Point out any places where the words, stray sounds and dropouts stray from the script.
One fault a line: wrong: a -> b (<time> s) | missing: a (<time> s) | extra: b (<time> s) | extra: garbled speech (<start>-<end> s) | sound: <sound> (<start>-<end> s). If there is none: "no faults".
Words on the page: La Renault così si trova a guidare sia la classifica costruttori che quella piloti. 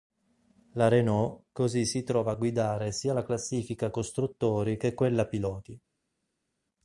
no faults